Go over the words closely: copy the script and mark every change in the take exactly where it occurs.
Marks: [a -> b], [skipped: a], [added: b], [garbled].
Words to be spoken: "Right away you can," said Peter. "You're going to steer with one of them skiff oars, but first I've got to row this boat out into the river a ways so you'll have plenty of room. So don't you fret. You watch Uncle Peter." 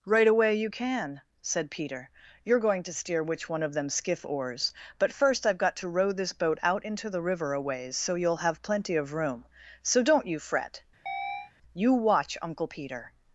"Right away you can," said Peter. "You're going to steer [with -> which] one of them skiff oars, but first I've got to row this boat out into the river a ways so you'll have plenty of room. So don't you fret. You watch Uncle Peter."